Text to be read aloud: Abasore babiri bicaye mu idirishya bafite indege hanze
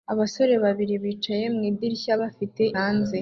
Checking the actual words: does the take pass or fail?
fail